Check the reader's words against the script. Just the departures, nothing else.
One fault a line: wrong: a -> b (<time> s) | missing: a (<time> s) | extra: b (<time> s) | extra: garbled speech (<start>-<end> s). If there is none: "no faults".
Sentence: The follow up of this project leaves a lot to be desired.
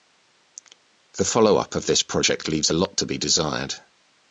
no faults